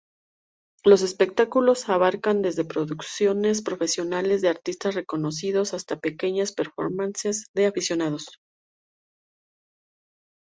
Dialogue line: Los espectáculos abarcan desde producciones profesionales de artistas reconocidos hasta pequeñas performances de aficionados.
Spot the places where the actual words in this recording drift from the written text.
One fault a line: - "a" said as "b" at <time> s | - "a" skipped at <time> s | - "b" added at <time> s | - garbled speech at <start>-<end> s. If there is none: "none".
none